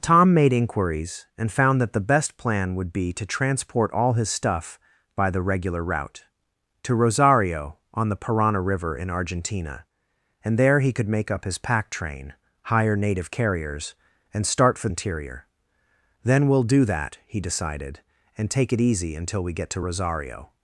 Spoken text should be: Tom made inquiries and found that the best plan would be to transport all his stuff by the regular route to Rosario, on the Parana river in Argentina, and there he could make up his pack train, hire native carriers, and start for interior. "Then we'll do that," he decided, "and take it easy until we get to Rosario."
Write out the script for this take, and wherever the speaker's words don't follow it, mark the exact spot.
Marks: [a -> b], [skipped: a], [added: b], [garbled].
Tom made inquiries and found that the best plan would be to transport all his stuff by the regular route to Rosario, on the Parana river in Argentina, and there he could make up his pack train, hire native carriers, and start for interior. "Then we'll do that," he decided, "and take it easy until we get to Rosario."